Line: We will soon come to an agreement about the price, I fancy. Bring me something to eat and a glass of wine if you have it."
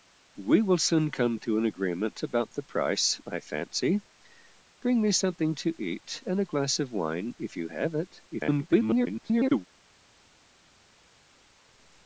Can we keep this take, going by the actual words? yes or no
no